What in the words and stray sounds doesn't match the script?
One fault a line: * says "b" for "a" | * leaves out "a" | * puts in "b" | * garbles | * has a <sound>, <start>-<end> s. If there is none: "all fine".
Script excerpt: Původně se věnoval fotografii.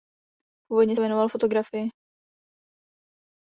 * leaves out "se"